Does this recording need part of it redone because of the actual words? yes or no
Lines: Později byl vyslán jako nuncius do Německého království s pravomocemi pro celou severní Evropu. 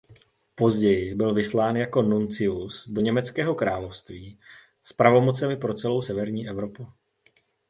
no